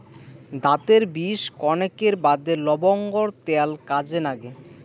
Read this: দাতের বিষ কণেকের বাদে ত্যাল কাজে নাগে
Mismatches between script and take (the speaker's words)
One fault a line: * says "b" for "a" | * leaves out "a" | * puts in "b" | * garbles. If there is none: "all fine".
* puts in "লবঙ্গর"